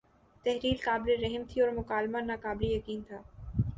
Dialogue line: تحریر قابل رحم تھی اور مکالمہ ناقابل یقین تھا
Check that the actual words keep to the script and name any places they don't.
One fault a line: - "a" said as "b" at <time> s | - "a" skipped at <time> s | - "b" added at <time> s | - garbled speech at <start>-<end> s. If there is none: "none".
none